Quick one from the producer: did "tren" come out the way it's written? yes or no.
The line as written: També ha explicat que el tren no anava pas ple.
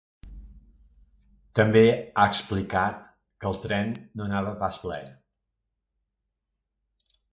yes